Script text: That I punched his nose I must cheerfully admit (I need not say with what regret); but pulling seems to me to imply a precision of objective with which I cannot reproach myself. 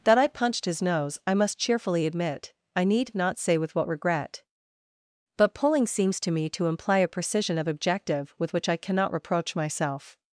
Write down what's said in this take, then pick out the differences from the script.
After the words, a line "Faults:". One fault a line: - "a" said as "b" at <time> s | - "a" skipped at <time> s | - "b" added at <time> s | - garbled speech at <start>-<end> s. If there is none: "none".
That I punched his nose I must cheerfully admit (I need not say with what regret); but pulling seems to me to imply a precision of objective with which I cannot reproach myself.
Faults:
none